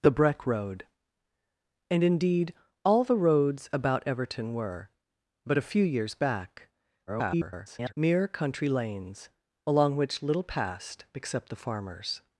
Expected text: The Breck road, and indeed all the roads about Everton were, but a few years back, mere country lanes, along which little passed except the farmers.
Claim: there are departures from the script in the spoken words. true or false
true